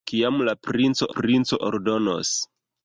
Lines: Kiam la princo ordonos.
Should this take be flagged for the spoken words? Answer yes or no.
yes